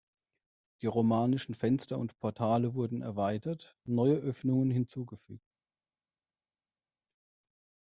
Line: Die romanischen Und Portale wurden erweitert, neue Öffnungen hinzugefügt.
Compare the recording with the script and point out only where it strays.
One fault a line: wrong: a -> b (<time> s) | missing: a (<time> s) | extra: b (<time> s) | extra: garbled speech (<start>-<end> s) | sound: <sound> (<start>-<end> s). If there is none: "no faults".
extra: Fenster (1.5 s)